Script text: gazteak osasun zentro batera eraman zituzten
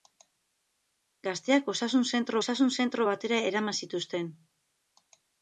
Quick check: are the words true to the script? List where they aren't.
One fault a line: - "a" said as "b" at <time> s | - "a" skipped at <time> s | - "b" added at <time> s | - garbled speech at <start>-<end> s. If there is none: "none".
- "osasun zentro" added at 2.4 s